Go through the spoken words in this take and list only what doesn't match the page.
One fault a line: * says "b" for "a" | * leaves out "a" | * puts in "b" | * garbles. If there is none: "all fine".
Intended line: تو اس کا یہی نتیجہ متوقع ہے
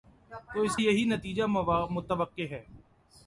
* leaves out "کا"